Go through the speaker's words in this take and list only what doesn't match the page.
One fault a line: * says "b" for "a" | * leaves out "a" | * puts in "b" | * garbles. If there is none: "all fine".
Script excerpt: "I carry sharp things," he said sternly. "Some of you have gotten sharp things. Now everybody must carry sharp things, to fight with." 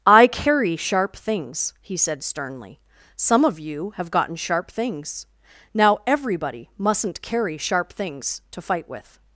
* says "mustn't" for "must"